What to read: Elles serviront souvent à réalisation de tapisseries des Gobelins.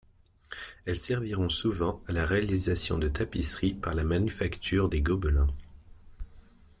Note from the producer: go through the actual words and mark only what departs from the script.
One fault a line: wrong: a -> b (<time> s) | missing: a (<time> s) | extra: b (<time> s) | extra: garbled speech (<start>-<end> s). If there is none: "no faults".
extra: la (2.1 s)
extra: par la Manufacture (3.8 s)